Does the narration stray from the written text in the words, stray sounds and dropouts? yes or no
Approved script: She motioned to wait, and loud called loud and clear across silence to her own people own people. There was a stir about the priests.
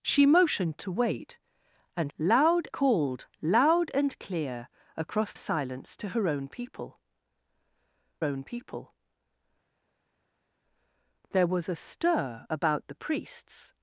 no